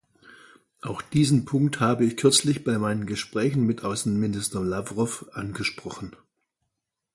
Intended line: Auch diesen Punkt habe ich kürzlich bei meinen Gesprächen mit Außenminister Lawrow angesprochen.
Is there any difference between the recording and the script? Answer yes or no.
no